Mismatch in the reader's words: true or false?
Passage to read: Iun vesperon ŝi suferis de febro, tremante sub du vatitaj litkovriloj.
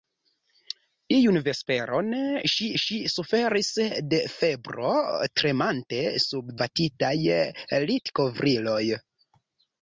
true